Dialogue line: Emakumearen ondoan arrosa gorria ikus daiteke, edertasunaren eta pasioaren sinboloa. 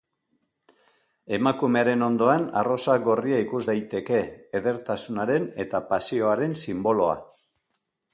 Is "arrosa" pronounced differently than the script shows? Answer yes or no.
no